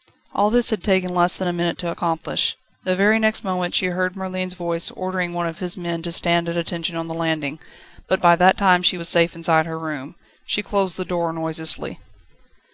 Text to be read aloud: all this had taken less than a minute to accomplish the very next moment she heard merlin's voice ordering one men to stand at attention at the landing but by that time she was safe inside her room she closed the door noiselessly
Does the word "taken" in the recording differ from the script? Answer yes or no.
no